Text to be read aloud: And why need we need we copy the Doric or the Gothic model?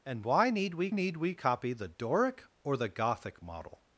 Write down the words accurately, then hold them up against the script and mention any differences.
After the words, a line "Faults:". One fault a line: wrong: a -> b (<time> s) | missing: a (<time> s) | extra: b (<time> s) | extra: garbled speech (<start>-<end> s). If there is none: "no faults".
And why need we need we copy the Doric or the Gothic model?
Faults:
no faults